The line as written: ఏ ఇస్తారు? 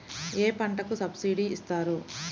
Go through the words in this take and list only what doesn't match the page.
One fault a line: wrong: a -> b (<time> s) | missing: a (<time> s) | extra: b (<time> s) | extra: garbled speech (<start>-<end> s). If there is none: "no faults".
extra: పంటకు సబ్సిడీ (0.5 s)